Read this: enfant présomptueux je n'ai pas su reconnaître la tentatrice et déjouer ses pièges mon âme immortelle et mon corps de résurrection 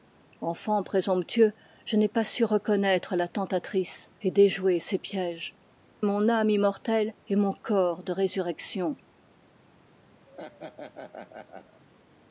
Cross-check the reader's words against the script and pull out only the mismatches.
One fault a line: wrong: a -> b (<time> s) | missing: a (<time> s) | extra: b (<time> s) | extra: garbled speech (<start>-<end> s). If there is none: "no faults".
no faults